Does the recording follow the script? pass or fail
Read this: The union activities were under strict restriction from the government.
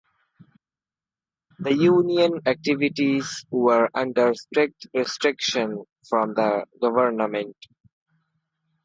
pass